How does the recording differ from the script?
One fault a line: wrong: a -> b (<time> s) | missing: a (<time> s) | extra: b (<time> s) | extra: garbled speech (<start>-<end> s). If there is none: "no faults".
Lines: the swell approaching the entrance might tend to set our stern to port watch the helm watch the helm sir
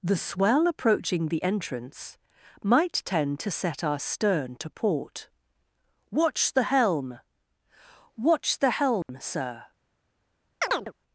no faults